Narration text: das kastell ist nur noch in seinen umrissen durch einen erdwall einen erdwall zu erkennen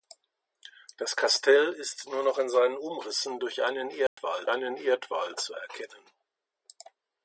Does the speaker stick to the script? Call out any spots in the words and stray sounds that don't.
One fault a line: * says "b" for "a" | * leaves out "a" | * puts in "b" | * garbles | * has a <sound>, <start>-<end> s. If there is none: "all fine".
* has a dropout, 4.1-4.2 s